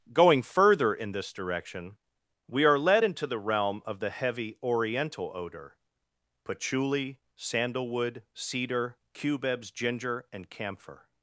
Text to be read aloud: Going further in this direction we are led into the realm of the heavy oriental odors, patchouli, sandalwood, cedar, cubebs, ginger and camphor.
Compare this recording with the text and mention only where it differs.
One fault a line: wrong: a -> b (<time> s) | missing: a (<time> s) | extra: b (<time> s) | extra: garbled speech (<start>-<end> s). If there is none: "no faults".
wrong: odors -> odor (5.3 s)